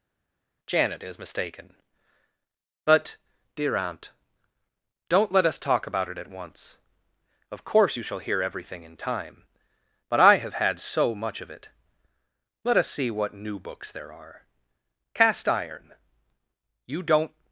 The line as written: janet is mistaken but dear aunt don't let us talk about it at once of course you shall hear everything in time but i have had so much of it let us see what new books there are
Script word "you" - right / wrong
right